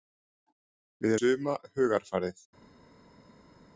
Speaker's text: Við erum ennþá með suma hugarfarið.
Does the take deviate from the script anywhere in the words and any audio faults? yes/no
yes